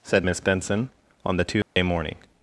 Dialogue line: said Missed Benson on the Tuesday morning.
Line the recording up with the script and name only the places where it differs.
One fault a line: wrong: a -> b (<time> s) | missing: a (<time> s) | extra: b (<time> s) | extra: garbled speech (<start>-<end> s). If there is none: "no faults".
wrong: Missed -> Miss (0.2 s)